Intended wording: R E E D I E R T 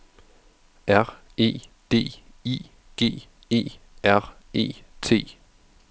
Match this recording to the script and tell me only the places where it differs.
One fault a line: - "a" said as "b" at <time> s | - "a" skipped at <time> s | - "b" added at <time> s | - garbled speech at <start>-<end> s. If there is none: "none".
- "E" skipped at 1.6 s
- "G" added at 3.0 s
- "E" added at 4.5 s